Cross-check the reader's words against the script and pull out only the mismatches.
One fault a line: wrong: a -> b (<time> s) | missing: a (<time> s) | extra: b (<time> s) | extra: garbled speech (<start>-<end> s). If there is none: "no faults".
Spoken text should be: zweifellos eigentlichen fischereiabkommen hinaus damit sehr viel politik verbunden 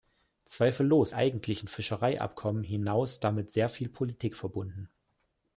no faults